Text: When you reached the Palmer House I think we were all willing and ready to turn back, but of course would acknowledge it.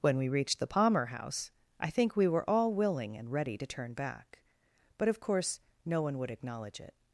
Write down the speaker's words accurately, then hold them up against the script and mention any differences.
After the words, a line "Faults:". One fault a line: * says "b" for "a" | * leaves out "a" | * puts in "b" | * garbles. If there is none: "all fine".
When we reached the Palmer House I think we were all willing and ready to turn back, but of course no one would acknowledge it.
Faults:
* says "we" for "you"
* puts in "no one"